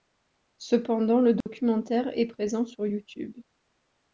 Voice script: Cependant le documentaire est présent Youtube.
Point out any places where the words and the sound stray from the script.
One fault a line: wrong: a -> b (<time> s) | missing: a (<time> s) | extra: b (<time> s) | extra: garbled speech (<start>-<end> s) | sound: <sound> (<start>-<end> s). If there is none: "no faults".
sound: dropout (1.4-1.5 s)
extra: sur (2.6 s)